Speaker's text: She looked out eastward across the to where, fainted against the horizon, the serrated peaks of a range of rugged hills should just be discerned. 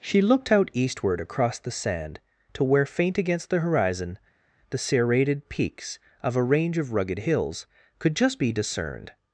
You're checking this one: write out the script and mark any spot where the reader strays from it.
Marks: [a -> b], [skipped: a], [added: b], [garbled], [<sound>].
She looked out eastward across the [added: sand] to where, [fainted -> faint] against the horizon, the serrated peaks of a range of rugged hills [should -> could] just be discerned.